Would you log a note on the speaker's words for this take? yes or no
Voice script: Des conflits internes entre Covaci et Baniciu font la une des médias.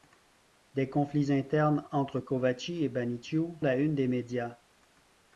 yes